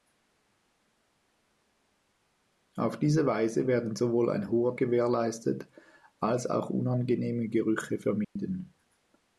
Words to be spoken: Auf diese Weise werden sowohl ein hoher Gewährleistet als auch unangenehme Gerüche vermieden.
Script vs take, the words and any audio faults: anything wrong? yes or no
yes